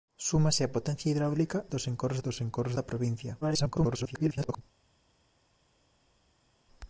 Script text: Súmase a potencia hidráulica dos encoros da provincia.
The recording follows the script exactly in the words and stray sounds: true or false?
false